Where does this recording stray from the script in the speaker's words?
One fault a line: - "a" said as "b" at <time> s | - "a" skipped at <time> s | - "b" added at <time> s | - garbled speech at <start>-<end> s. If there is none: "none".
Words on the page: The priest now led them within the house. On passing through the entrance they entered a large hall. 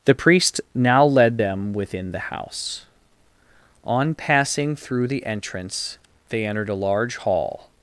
none